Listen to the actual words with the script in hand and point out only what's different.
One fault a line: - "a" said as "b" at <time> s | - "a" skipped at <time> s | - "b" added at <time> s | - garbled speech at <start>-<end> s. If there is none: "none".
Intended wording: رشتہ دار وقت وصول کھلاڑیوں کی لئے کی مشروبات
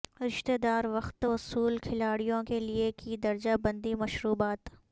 - "کی" said as "کے" at 2.5 s
- "درجہ بندی" added at 3.2 s